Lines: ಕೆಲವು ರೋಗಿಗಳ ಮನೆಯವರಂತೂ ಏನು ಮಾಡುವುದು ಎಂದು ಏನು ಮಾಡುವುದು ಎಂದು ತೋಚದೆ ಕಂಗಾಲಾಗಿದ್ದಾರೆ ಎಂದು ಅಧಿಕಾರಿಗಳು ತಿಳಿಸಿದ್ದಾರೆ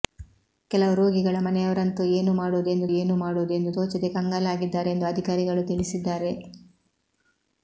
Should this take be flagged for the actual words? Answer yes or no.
no